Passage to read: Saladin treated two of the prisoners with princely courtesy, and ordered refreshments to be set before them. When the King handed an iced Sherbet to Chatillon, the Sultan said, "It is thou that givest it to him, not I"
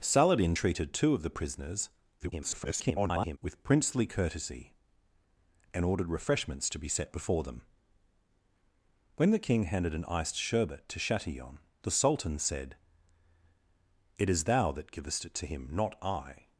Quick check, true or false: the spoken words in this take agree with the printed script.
false